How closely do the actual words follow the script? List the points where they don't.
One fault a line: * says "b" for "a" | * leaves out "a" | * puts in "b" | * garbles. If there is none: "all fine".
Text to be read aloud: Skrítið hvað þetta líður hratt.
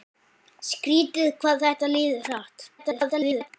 * garbles